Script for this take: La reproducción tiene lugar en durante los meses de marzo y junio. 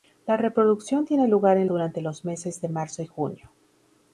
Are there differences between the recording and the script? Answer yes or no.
no